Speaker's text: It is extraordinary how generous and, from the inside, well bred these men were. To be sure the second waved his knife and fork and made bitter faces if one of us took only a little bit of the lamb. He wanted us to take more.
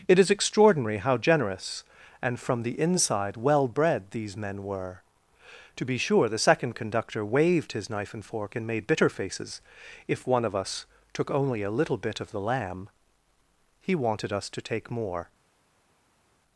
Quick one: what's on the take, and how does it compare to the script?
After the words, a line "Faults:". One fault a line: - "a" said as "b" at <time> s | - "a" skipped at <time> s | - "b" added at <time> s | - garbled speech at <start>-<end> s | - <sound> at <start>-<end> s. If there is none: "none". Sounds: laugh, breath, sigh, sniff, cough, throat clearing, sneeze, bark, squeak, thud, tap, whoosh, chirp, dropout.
It is extraordinary how generous and, from the inside, well bred these men were. To be sure the second conductor waved his knife and fork and made bitter faces if one of us took only a little bit of the lamb. He wanted us to take more.
Faults:
- "conductor" added at 6.7 s